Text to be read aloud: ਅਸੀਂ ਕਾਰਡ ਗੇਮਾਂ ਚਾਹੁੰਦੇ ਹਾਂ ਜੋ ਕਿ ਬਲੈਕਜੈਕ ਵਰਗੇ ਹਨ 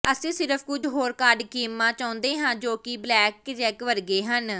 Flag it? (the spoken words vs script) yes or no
yes